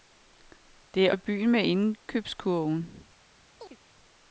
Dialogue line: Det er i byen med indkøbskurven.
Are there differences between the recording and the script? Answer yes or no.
no